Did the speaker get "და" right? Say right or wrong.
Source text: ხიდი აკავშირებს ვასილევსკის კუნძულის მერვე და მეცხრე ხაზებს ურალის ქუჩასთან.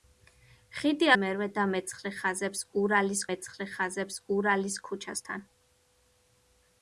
wrong